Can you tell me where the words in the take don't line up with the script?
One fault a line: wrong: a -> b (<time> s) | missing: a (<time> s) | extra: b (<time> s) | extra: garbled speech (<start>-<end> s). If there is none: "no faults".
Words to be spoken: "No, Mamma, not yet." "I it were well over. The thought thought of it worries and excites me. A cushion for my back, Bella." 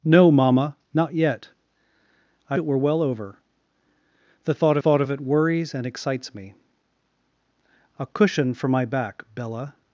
no faults